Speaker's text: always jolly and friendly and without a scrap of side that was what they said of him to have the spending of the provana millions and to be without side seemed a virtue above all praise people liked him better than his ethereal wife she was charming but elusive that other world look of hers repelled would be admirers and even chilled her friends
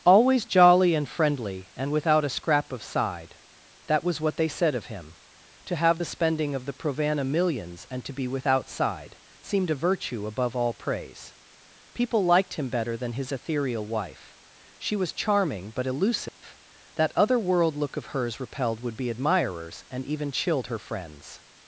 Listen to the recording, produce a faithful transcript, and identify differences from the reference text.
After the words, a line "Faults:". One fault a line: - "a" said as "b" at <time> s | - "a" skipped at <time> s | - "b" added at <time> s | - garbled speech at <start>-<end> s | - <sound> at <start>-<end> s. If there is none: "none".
always jolly and friendly and without a scrap of side that was what they said of him to have the spending of the provana millions and to be without side seemed a virtue above all praise people liked him better than his ethereal wife she was charming but elusive that other world look of hers repelled would be admirers and even chilled her friends
Faults:
- dropout at 16.3-16.4 s